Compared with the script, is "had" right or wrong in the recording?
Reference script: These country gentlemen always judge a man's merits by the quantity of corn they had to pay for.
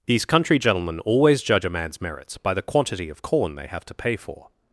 wrong